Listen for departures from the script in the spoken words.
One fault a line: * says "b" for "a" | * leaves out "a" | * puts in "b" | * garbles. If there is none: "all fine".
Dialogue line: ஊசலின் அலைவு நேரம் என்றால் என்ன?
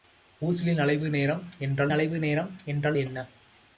* puts in "அலைவு நேரம் என்றால்"